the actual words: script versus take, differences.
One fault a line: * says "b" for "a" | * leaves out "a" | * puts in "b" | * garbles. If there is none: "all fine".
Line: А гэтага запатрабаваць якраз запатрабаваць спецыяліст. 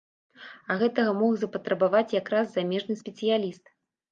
* puts in "мог"
* says "замежны" for "запатрабаваць"